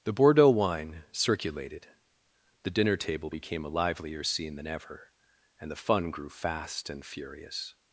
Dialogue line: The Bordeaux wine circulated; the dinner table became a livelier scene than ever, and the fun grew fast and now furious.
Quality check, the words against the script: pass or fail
fail